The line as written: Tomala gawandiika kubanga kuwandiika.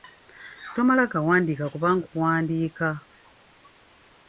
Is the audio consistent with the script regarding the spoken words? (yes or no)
yes